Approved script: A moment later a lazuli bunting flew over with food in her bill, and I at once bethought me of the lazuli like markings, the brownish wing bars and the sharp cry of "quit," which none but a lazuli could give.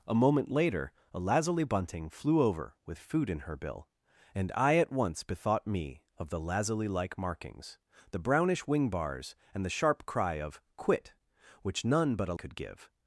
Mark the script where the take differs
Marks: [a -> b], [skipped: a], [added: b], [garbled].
A moment later a lazuli bunting flew over with food in her bill, and I at once bethought me of the lazuli like markings, the brownish wing bars and the sharp cry of "quit," which none but a [skipped: lazuli] could give.